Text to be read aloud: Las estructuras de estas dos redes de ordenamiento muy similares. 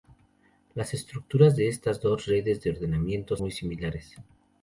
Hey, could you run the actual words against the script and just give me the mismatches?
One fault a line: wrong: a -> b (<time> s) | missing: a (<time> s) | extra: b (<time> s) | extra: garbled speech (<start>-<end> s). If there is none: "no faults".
no faults